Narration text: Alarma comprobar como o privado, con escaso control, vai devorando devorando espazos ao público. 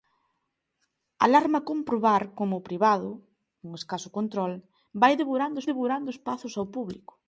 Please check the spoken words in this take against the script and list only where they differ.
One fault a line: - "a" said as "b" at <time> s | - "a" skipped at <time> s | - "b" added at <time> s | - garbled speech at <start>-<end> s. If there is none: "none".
none